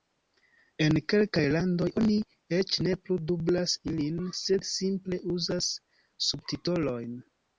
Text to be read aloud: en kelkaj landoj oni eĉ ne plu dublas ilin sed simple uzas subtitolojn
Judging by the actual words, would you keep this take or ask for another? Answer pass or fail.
pass